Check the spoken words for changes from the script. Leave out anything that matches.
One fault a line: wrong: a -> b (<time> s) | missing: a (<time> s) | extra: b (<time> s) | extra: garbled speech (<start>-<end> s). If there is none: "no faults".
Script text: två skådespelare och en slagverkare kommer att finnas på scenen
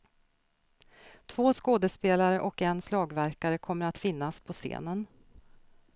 no faults